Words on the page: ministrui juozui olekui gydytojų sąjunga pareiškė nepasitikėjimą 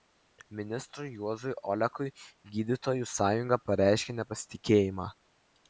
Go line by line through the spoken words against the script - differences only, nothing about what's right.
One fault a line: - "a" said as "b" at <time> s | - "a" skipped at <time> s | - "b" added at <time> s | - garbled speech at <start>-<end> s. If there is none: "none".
none